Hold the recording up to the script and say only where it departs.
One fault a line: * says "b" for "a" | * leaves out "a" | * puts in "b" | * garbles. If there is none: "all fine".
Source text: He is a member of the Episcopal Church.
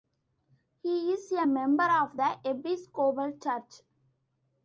all fine